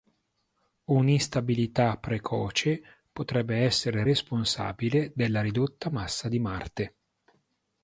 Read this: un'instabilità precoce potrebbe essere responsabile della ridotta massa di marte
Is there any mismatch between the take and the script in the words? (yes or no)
no